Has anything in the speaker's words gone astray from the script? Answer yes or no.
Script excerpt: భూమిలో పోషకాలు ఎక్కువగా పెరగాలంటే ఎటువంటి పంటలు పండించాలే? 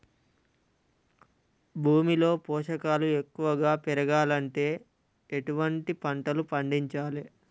no